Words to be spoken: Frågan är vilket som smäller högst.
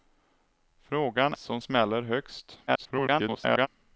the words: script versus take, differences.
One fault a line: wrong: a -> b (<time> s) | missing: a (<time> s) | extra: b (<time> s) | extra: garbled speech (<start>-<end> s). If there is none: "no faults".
missing: är vilket (1.3 s)
extra: garbled speech (2.7-3.7 s)